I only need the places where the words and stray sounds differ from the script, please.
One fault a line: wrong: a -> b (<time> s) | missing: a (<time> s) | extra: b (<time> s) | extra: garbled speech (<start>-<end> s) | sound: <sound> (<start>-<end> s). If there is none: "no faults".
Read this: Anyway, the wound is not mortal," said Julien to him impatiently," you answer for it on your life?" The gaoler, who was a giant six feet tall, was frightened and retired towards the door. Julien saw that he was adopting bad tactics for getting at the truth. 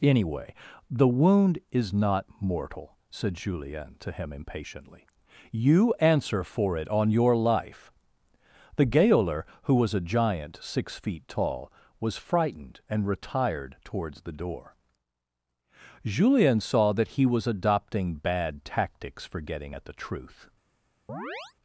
sound: chirp (21.1-21.5 s)